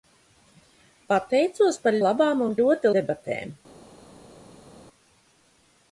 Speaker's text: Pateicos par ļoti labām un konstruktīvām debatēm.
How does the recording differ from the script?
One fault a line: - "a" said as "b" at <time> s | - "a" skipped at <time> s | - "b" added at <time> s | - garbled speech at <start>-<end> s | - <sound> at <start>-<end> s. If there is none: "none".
- "ļoti" skipped at 2.0 s
- "konstruktīvām" said as "ļoti" at 2.6 s